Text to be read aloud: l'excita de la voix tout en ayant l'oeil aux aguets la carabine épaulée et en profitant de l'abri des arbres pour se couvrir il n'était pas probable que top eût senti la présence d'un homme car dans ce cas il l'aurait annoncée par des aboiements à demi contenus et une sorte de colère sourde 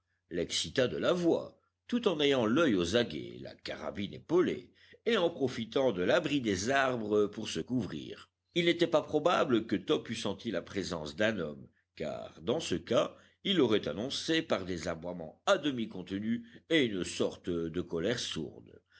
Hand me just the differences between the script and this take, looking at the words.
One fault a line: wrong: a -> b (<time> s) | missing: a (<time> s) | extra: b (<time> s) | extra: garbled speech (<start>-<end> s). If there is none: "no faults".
no faults